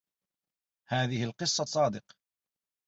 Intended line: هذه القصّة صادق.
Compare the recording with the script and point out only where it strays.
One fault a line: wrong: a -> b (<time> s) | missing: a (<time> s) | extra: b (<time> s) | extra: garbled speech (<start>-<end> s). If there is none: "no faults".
no faults